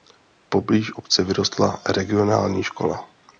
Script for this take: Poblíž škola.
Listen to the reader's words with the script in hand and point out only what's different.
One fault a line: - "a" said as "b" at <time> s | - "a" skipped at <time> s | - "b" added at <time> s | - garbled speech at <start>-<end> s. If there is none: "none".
- "obce vyrostla regionální" added at 0.9 s